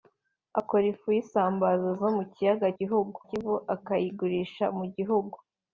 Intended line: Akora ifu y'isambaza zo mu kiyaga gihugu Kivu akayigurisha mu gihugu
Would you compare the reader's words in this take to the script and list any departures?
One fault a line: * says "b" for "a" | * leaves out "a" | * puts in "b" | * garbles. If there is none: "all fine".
all fine